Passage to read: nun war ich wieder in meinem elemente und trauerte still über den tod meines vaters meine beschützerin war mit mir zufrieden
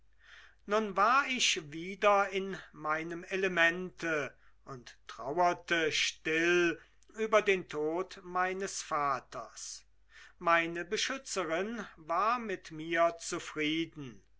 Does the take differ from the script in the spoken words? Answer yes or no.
no